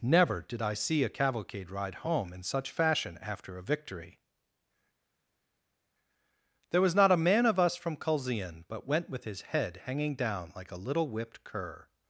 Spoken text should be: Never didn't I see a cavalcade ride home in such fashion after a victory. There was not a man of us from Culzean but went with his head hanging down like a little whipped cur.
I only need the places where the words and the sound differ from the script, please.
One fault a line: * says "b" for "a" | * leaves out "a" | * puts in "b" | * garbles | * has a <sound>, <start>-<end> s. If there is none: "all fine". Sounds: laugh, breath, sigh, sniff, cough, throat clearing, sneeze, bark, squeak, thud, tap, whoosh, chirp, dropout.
* says "did" for "didn't"